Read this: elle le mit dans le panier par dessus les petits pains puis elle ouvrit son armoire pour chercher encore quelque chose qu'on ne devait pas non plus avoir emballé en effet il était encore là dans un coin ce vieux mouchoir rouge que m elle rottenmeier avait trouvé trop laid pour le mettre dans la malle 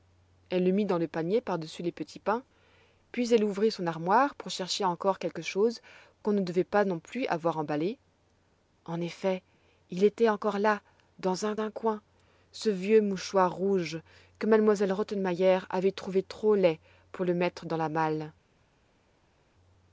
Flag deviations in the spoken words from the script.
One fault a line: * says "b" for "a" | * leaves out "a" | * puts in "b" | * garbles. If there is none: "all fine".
* puts in "un"